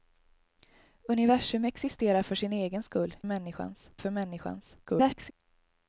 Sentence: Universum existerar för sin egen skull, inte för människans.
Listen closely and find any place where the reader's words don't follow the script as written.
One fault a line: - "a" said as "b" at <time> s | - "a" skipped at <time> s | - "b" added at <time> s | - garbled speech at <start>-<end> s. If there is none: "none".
- "inte" said as "människans" at 3.2 s
- garbled speech at 4.8-5.3 s